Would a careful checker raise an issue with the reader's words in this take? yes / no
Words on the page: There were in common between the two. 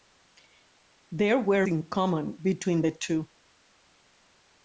no